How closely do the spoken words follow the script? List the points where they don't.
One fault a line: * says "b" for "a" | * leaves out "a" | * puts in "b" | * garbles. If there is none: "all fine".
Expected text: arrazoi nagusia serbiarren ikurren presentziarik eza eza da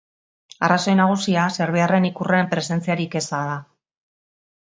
* leaves out "eza"